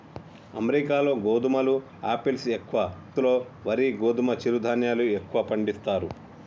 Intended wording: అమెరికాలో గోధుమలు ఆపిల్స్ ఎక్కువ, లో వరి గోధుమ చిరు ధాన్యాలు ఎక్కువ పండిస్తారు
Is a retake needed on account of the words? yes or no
no